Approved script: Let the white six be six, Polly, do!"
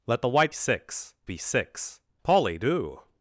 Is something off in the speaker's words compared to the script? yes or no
no